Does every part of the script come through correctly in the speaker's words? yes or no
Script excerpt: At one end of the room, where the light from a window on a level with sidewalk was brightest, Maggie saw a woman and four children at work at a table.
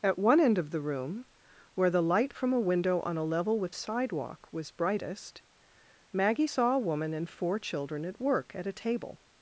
yes